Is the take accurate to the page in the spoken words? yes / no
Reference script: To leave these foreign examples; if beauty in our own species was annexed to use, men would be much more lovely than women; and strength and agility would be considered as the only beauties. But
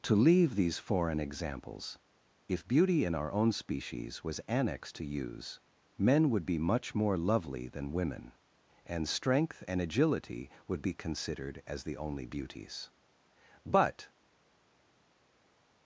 yes